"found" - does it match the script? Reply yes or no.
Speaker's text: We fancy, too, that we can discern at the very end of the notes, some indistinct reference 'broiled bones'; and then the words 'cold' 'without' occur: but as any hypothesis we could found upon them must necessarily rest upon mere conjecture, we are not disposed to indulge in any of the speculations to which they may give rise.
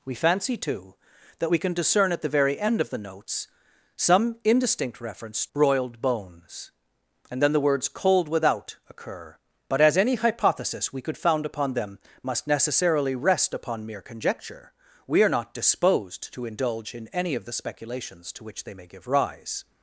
yes